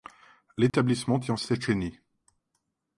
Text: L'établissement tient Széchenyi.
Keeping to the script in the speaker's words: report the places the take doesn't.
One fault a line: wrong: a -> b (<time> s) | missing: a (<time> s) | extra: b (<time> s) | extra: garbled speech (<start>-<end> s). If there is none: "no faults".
no faults